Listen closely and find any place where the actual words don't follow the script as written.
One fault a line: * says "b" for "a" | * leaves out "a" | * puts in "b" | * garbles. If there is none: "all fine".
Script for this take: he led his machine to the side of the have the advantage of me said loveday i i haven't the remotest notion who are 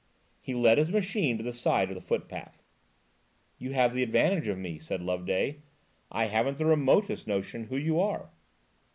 * puts in "footpath you"
* leaves out "i"
* puts in "you"